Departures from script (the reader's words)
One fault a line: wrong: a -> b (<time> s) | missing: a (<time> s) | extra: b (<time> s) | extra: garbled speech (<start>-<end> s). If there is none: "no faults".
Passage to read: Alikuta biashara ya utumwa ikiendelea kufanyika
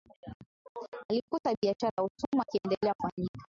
no faults